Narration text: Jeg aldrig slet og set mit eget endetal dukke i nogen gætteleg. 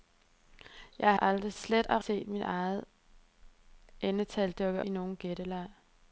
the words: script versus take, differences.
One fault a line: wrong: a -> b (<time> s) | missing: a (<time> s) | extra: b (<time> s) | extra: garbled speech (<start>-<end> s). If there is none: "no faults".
no faults